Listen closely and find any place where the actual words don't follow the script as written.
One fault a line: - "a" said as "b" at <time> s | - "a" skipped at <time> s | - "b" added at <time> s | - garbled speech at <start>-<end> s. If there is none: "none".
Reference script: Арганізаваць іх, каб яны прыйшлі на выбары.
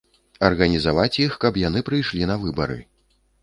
none